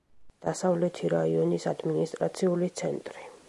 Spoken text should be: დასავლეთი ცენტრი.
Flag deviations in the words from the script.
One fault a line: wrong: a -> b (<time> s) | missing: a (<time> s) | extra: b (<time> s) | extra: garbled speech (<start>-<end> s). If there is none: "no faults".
extra: რაიონის ადმინისტრაციული (1.1 s)